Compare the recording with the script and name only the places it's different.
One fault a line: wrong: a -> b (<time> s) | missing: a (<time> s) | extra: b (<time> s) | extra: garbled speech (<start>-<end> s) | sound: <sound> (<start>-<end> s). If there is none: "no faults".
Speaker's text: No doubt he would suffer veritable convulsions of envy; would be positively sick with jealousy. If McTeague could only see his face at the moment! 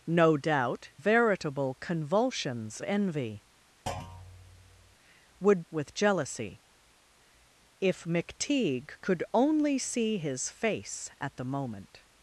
missing: he would suffer (0.9 s)
missing: of (2.8 s)
sound: thud (3.9-5.0 s)
missing: be positively sick (5.7 s)